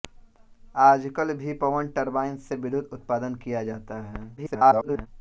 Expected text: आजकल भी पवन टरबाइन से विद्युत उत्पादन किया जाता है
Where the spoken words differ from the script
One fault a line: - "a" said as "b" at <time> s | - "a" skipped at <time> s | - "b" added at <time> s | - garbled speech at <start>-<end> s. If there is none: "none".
- garbled speech at 4.4-5.1 s